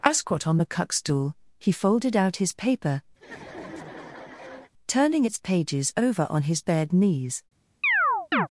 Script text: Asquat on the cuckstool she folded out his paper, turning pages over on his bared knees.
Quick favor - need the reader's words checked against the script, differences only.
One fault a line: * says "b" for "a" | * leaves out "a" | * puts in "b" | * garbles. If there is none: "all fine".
* says "he" for "she"
* puts in "its"